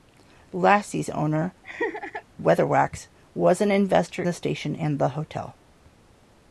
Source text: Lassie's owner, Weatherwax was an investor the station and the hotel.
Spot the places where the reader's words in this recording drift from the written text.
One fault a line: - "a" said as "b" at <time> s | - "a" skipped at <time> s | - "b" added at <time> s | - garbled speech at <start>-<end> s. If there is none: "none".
none